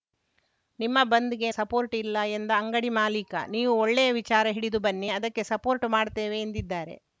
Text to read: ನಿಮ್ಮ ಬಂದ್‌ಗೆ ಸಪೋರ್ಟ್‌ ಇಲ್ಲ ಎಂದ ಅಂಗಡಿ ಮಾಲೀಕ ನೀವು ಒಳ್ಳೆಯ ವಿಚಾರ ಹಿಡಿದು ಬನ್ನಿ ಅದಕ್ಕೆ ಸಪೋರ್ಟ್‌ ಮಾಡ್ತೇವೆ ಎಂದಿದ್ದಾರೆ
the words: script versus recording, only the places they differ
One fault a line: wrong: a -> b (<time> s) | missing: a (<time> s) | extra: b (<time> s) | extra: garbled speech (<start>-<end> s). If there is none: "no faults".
no faults